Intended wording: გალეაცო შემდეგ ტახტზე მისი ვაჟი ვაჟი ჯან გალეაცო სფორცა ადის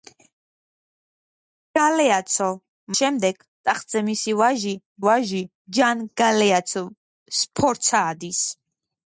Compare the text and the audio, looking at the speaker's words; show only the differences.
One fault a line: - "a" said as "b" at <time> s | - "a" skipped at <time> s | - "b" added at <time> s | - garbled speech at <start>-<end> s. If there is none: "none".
none